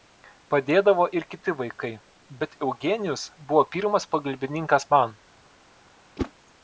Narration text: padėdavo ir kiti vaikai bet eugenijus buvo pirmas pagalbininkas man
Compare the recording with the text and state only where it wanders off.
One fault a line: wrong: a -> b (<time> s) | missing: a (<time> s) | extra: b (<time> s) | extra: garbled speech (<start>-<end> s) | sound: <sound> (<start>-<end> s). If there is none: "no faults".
sound: whoosh (6.2-6.3 s)